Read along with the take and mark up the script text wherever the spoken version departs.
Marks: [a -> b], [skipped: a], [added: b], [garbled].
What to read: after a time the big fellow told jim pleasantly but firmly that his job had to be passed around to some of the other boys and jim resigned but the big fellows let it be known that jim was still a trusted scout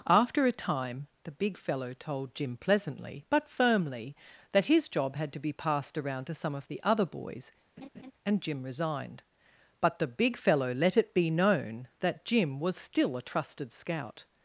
after a time the big fellow told jim pleasantly but firmly that his job had to be passed around to some of the other boys and jim resigned but the big [fellows -> fellow] let it be known that jim was still a trusted scout